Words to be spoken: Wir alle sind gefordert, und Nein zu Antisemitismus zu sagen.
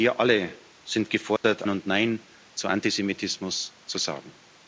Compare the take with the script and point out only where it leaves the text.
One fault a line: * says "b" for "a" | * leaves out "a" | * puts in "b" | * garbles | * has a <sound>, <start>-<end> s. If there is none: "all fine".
* has a dropout, 1.4-1.4 s